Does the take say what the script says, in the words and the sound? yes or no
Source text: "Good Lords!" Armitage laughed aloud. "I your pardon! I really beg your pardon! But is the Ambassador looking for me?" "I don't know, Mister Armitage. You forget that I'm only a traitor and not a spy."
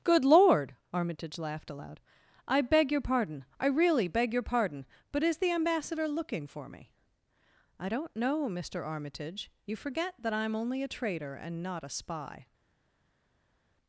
no